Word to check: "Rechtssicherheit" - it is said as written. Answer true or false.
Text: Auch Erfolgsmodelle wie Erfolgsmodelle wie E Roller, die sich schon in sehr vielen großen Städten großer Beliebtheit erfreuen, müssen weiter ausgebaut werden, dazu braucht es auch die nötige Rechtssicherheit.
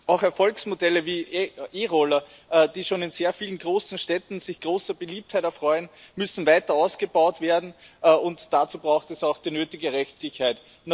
true